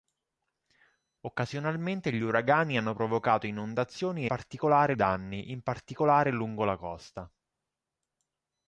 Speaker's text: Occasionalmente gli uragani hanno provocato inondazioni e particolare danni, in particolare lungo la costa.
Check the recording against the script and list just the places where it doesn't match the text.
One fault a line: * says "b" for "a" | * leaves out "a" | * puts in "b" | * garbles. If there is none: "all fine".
all fine